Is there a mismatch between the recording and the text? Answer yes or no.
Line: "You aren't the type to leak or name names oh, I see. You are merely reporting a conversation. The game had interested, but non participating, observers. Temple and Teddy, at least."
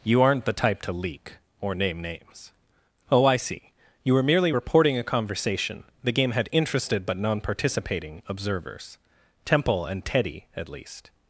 yes